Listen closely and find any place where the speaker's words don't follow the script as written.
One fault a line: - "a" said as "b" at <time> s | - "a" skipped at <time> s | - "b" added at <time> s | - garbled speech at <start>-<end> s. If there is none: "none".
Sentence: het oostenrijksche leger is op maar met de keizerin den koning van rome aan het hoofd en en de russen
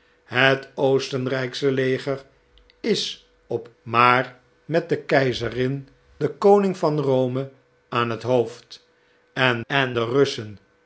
none